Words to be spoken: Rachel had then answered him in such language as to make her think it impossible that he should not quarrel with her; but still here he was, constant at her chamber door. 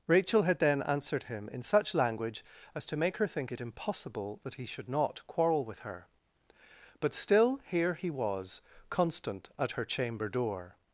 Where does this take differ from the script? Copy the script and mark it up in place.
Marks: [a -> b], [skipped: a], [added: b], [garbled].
Rachel had then answered him in such language as to make her think it impossible that he should not quarrel with her; but still here he was, constant at her chamber door.